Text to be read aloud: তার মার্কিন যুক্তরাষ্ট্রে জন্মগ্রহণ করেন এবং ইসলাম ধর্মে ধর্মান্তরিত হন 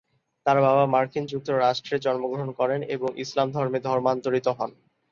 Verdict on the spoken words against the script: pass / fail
fail